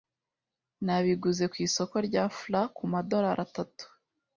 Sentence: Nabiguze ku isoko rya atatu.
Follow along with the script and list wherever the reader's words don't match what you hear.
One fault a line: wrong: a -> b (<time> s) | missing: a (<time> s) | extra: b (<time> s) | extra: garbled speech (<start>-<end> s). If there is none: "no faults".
extra: fla kumadorari (2.4 s)